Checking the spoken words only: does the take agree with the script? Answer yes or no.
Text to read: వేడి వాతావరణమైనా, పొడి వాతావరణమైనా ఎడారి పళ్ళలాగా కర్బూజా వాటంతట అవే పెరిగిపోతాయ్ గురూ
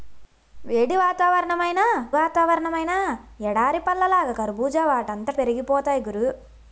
no